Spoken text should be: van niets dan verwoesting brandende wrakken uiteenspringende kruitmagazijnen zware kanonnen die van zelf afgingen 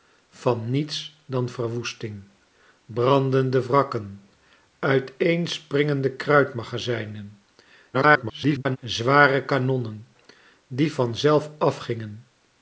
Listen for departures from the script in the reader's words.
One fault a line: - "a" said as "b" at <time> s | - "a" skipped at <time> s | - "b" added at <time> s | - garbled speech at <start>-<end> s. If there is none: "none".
- garbled speech at 7.9-8.8 s